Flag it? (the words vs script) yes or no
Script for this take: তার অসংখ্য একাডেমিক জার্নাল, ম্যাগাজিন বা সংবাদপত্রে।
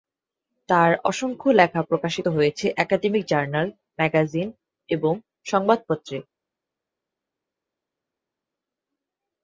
yes